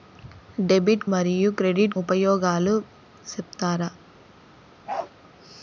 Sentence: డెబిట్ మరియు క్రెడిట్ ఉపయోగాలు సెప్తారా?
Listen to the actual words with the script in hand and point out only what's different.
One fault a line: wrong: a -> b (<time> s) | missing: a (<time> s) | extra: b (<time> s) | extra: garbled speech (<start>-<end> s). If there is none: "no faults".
no faults